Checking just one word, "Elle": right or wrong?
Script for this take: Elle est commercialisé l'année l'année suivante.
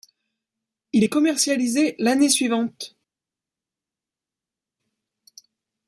wrong